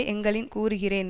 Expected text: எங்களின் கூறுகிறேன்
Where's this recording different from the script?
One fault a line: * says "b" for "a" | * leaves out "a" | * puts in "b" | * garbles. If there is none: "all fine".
all fine